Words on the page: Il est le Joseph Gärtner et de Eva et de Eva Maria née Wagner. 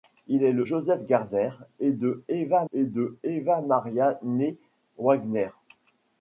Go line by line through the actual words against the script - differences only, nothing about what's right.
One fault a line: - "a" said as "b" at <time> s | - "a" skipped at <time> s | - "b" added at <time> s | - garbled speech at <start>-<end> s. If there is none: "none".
none